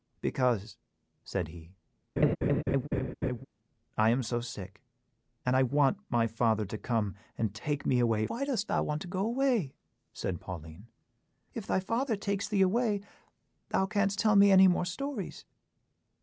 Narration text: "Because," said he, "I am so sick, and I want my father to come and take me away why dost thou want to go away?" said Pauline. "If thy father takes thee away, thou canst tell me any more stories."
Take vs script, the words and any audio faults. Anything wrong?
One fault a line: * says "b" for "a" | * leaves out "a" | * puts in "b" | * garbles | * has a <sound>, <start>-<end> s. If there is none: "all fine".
* has a laugh, 2.2-3.5 s